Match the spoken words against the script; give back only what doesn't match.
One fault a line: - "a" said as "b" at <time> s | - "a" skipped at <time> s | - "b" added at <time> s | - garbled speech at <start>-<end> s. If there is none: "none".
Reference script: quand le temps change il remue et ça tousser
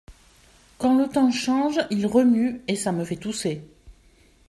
- "me fait" added at 2.9 s